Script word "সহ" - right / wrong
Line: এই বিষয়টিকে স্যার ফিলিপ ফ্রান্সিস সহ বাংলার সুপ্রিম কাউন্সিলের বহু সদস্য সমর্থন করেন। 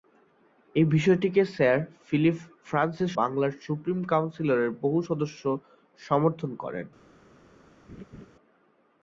wrong